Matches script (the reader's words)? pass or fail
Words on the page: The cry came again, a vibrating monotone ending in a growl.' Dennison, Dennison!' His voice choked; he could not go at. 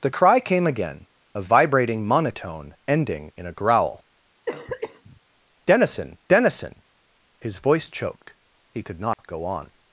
fail